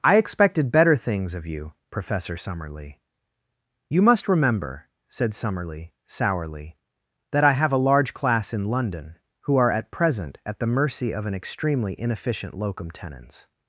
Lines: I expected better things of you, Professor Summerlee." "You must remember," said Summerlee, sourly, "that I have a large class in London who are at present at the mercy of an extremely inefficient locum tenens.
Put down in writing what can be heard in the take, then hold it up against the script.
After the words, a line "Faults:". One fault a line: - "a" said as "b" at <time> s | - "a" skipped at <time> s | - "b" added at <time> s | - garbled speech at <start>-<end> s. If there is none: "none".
I expected better things of you, Professor Summerlee." "You must remember," said Summerlee, sourly, "that I have a large class in London who are at present at the mercy of an extremely inefficient locum tenens.
Faults:
none